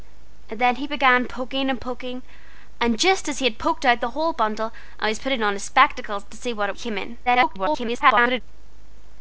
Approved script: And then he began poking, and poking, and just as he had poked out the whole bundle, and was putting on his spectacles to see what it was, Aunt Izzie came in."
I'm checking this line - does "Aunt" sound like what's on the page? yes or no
no